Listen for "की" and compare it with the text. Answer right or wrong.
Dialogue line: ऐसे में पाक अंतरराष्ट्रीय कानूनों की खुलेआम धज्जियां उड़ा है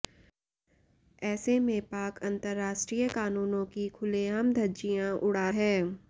right